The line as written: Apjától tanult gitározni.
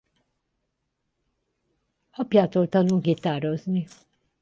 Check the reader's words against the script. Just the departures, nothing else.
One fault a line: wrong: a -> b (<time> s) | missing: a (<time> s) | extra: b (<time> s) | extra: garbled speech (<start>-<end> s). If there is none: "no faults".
no faults